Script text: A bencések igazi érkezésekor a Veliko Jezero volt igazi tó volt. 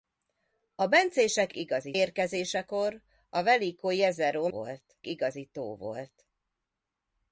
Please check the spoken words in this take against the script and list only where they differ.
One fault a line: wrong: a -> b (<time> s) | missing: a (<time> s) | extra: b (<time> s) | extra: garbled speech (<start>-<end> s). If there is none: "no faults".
no faults